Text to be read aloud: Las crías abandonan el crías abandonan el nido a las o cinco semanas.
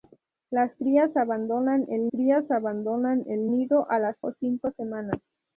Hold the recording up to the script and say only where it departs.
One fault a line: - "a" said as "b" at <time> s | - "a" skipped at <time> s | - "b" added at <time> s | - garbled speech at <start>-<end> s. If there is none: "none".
none